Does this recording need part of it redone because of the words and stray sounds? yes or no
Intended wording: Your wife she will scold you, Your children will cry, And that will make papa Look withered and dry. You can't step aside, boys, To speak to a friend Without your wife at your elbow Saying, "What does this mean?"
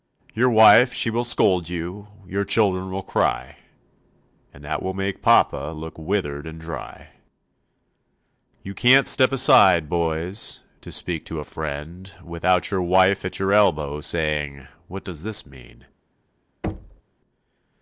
yes